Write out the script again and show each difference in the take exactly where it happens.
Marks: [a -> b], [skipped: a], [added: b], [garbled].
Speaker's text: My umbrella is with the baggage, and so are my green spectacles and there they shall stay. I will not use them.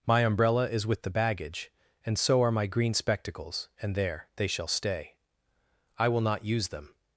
My umbrella is with the baggage, and so are my green spectacles and there they shall stay. I will not use them.